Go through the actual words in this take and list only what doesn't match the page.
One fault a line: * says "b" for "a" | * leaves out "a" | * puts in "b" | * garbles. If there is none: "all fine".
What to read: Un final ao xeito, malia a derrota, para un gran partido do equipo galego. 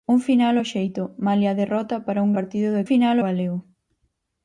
* leaves out "gran"
* says "final" for "equipo"